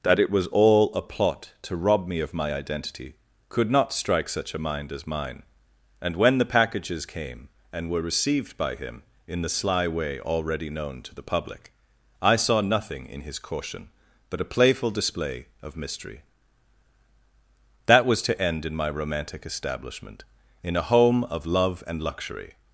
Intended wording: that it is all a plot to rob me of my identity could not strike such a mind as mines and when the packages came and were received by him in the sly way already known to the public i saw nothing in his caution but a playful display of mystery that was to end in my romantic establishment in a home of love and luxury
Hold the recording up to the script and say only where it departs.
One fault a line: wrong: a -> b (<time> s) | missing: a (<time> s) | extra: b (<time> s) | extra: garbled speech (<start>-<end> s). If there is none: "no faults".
wrong: is -> was (0.3 s)
wrong: mines -> mine (5.1 s)